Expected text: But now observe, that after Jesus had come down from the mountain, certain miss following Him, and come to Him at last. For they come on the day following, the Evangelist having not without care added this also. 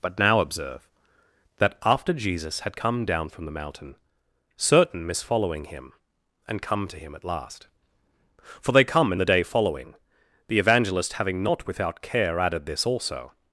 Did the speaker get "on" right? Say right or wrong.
wrong